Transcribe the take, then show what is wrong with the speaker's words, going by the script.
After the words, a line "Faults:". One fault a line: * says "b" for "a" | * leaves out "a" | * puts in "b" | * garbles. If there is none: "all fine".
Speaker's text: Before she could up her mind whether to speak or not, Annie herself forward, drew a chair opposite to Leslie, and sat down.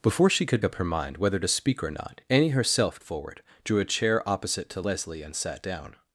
Before she could up her mind whether to speak or not, Annie herself forward, drew a chair opposite to Leslie, and sat down.
Faults:
all fine